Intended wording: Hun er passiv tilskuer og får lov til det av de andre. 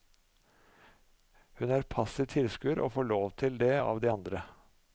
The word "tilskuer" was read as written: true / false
true